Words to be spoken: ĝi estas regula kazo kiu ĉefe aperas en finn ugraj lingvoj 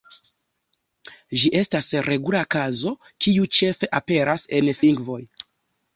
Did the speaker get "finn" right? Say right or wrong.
wrong